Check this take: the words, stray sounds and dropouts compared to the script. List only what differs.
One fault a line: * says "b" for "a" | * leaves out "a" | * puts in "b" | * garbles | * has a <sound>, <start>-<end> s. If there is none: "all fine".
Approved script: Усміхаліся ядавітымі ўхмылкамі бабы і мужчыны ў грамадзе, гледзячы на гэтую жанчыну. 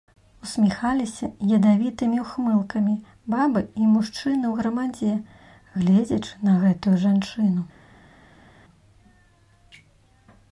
all fine